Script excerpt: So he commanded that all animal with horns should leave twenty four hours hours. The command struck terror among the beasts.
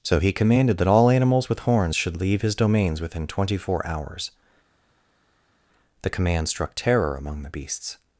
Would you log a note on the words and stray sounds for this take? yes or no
yes